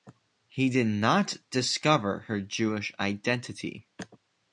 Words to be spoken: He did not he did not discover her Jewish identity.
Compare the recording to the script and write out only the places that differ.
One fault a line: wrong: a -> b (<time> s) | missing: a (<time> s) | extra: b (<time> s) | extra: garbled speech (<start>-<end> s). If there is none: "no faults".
missing: he did not (1.4 s)